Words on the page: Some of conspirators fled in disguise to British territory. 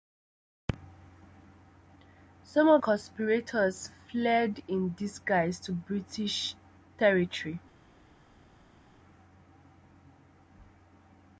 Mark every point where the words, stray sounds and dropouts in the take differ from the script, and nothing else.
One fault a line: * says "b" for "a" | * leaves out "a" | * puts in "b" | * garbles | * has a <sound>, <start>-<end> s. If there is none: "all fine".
all fine